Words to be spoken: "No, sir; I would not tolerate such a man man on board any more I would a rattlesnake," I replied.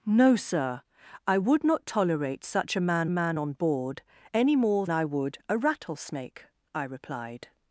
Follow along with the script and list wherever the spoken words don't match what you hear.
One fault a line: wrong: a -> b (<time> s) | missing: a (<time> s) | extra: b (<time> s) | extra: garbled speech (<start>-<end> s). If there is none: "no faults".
no faults